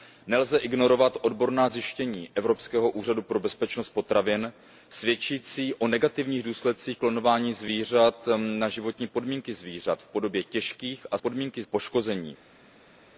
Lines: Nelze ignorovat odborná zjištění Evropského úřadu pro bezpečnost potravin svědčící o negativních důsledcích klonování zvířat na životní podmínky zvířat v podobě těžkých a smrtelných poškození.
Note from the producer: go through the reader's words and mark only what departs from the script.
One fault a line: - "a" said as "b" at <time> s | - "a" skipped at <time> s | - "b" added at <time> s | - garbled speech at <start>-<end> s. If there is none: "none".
- "smrtelných" said as "podmínky" at 11.2 s